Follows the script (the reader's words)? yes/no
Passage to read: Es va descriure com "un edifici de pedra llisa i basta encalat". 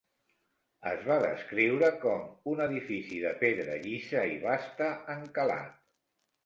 yes